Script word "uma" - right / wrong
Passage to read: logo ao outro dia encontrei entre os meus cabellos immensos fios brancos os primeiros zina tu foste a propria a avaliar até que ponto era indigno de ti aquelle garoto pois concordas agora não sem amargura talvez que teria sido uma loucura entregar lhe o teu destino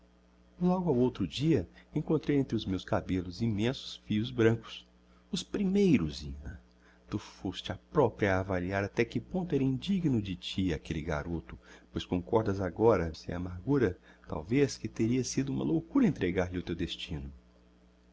right